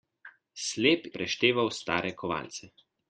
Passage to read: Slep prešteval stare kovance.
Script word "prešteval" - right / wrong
right